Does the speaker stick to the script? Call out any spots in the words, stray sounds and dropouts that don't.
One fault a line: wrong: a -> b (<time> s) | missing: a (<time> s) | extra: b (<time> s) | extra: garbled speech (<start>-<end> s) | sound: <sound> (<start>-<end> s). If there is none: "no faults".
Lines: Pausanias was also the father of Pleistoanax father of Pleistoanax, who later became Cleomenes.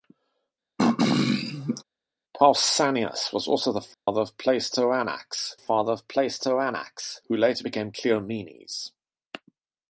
sound: throat clearing (0.8-1.8 s)
sound: dropout (3.9-4.1 s)